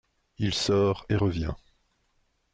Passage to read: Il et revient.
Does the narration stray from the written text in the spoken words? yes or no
yes